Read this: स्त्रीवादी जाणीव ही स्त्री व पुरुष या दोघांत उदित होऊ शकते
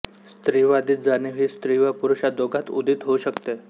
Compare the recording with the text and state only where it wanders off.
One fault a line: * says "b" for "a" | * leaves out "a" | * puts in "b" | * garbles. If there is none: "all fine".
all fine